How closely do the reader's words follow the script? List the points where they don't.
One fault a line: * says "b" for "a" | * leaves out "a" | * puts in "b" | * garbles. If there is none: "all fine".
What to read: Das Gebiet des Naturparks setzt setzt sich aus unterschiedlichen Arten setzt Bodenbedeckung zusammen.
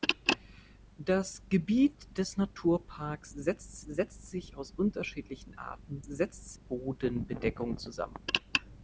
all fine